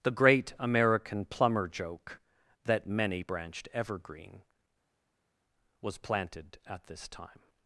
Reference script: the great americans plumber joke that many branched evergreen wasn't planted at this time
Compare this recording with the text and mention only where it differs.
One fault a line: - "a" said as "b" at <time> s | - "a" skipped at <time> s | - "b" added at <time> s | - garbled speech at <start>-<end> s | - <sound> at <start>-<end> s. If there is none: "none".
- "americans" said as "american" at 0.6 s
- "wasn't" said as "was" at 5.8 s